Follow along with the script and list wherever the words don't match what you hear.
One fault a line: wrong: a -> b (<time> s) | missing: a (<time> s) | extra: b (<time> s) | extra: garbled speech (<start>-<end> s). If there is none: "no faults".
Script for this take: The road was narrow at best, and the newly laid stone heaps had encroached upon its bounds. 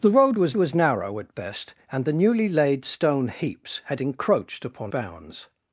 extra: was (0.6 s)
missing: its (4.9 s)